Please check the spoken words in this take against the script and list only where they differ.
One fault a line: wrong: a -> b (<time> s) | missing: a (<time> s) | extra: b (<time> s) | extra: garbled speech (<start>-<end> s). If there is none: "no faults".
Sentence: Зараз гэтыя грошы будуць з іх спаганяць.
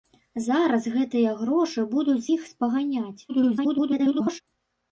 missing: з (2.2 s)
extra: garbled speech (3.3-4.4 s)